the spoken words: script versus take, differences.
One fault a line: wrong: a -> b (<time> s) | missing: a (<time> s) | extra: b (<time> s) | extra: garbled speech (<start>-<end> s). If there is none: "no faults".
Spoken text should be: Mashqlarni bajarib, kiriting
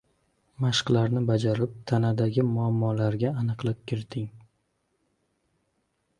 extra: tanadagi muammolarga aniqlik (1.9 s)